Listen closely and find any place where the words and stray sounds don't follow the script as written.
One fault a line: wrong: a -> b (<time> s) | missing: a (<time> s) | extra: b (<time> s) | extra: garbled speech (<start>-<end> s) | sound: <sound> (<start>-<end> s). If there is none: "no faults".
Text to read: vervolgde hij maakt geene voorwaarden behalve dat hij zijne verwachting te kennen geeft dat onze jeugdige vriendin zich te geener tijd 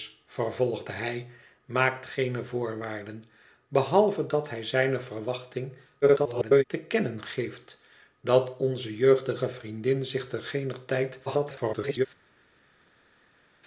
extra: garbled speech (6.0-6.6 s)
extra: garbled speech (11.3-12.1 s)